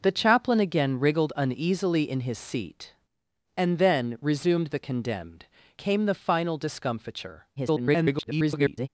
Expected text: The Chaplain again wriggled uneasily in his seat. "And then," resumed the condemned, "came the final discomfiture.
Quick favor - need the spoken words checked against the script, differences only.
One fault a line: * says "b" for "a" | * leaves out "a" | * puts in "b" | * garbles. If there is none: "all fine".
* garbles